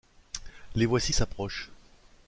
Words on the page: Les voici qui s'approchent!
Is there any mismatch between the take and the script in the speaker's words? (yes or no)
yes